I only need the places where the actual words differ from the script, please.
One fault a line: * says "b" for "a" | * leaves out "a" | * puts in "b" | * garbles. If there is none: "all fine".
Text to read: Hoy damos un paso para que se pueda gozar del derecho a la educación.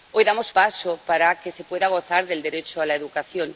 * leaves out "un"